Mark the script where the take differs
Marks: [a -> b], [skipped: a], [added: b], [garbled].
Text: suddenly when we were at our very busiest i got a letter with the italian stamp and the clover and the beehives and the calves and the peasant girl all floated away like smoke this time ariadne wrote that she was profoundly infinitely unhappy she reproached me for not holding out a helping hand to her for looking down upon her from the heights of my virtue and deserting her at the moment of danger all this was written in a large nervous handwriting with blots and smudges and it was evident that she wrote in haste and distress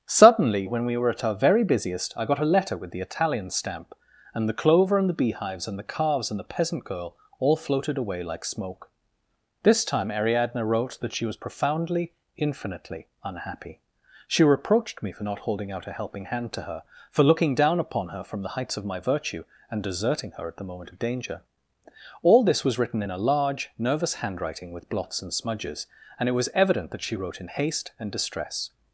suddenly when we were at our very busiest i got a letter with the italian stamp and the clover and the beehives and the calves and the peasant girl all floated away like smoke this time ariadne wrote that she was profoundly infinitely unhappy she reproached me for not holding out a helping hand to her for looking down upon her from the heights of my virtue and deserting her at the moment of danger all this was written in a large nervous handwriting with blots and smudges and it was evident that she wrote in haste and distress